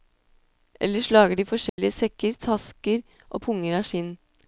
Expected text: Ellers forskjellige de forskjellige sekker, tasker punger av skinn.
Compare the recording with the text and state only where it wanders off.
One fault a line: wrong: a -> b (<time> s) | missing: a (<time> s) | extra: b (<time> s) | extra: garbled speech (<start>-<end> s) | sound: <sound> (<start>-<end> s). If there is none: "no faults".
wrong: forskjellige -> lager (1.1 s)
sound: dropout (1.7-1.8 s)
extra: og (3.3 s)